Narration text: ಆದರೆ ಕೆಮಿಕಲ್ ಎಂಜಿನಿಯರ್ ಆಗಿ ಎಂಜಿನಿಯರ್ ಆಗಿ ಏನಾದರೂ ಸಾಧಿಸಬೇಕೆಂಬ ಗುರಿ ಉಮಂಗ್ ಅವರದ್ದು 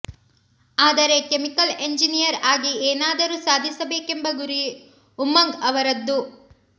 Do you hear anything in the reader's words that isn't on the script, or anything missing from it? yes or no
yes